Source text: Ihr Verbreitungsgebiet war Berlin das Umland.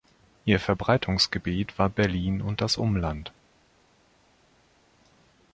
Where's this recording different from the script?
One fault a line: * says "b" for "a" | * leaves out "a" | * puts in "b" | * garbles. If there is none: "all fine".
* puts in "und"